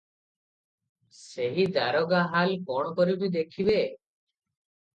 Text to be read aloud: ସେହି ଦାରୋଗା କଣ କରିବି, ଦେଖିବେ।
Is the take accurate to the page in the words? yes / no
no